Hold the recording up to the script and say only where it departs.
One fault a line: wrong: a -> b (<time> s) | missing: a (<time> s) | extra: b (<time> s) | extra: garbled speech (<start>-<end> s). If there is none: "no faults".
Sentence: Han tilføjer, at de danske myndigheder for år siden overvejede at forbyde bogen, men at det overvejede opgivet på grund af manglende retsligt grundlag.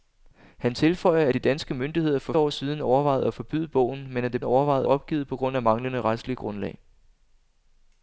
no faults